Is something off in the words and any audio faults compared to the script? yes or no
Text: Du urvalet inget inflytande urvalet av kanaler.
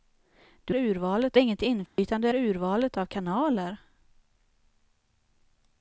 yes